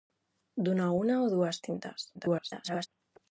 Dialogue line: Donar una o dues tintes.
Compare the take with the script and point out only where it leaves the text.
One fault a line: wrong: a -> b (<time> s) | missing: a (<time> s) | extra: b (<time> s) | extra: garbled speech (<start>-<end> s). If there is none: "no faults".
extra: garbled speech (2.1-2.9 s)